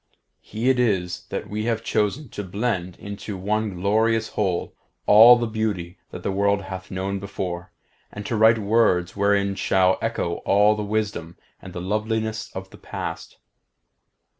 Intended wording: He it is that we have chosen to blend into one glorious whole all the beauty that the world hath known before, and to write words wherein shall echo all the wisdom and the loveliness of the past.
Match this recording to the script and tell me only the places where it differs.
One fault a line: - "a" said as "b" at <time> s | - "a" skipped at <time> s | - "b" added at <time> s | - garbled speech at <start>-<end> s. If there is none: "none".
none